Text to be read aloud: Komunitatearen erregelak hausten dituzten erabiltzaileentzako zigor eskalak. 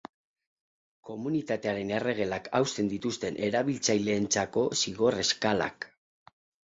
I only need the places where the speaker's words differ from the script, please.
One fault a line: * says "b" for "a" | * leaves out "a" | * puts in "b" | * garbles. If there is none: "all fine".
all fine